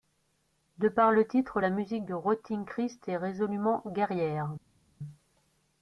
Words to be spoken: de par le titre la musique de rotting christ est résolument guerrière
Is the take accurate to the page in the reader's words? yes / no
yes